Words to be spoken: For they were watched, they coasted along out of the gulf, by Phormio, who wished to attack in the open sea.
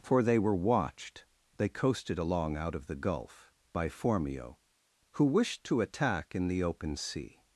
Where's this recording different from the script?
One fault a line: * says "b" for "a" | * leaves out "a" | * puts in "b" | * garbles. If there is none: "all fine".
all fine